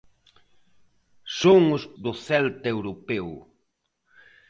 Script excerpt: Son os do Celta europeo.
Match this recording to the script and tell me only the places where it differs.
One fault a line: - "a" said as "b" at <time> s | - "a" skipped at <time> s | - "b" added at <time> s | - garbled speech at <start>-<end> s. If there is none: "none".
none